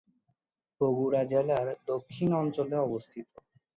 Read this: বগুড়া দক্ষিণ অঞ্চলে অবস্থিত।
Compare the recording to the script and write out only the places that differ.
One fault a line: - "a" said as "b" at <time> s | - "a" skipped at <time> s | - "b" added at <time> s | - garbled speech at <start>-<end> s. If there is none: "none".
- "জেলার" added at 1.2 s